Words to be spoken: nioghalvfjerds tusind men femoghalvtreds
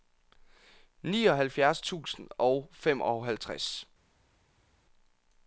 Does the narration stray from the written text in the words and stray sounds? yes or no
yes